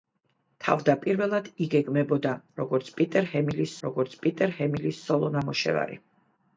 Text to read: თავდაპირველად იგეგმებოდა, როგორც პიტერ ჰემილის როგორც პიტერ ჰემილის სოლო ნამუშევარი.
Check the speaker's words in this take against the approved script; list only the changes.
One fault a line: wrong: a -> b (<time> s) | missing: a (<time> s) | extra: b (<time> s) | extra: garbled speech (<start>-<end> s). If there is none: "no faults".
no faults